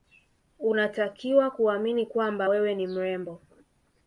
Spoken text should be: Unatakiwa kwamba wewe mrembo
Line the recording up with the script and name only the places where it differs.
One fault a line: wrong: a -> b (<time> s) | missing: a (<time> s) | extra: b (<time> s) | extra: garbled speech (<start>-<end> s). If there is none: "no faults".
extra: kuamini (1.5 s)
extra: ni (2.8 s)